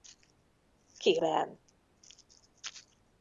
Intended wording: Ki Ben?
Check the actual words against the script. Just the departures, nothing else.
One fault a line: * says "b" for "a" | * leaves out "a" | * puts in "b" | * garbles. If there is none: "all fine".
all fine